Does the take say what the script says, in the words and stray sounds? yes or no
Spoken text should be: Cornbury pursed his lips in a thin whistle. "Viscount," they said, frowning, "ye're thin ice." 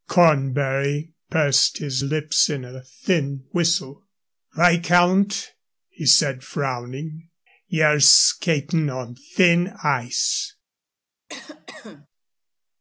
no